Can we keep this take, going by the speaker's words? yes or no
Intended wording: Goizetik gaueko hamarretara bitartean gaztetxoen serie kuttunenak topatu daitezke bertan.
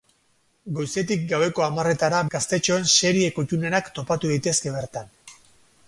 no